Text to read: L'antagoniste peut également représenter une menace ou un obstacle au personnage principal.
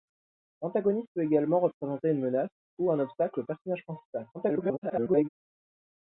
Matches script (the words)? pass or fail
fail